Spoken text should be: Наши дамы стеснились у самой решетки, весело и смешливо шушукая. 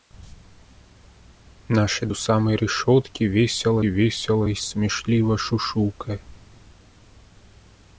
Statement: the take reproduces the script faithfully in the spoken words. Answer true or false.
false